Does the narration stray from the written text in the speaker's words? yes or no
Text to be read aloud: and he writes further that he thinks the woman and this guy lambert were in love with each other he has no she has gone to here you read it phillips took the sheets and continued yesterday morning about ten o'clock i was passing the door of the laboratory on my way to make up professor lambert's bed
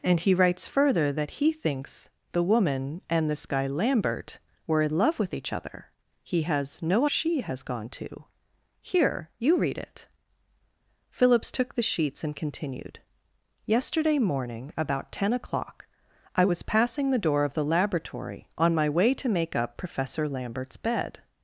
no